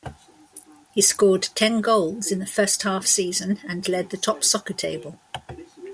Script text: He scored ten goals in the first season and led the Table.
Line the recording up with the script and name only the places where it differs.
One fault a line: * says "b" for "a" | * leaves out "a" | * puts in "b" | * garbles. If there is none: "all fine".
* puts in "half"
* puts in "Top Soccer"